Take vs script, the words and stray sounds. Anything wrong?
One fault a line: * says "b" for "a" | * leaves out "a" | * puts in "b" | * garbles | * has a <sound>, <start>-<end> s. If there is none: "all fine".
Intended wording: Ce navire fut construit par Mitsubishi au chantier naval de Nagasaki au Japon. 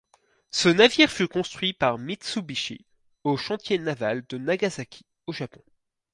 all fine